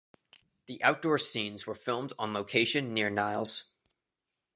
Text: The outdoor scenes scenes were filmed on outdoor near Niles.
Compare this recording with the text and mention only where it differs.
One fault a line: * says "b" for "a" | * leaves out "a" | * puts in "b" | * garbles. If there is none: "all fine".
* leaves out "scenes"
* says "location" for "outdoor"